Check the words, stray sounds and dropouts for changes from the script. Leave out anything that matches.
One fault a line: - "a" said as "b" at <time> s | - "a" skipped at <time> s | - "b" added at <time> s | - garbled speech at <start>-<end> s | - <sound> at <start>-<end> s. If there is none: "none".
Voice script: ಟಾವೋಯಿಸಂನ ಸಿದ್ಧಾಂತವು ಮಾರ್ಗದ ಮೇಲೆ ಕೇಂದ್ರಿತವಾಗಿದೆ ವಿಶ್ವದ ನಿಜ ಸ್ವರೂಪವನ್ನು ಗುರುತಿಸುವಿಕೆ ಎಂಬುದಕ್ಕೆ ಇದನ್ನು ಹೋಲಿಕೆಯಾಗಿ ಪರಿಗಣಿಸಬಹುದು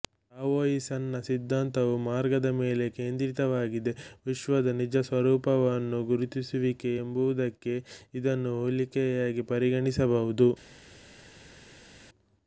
none